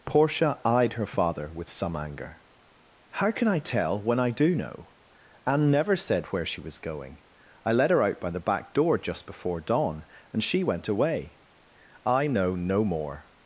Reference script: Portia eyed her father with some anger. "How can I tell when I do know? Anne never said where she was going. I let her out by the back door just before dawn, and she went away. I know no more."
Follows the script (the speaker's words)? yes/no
yes